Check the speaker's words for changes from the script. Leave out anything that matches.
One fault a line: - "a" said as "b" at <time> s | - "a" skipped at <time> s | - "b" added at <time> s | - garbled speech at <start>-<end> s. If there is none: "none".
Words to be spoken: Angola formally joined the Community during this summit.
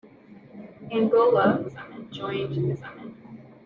- "formally" said as "summit" at 1.7 s
- "Community during this" skipped at 2.7 s